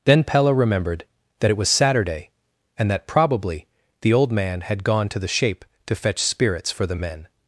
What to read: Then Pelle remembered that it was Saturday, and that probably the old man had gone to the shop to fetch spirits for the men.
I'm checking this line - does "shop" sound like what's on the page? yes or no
no